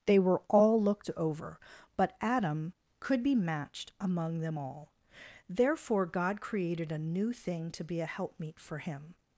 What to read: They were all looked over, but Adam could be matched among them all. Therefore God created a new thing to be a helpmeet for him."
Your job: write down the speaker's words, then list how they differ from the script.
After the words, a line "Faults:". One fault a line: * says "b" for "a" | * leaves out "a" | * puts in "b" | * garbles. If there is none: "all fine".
They were all looked over, but Adam could be matched among them all. Therefore God created a new thing to be a helpmeet for him."
Faults:
all fine